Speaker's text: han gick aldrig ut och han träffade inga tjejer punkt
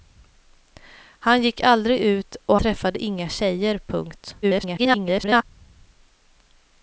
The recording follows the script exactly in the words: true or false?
false